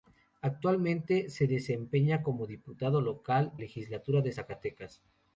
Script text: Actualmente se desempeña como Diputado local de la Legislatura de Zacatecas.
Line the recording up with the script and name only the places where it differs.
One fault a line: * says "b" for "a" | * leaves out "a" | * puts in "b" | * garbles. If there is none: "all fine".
* leaves out "de la"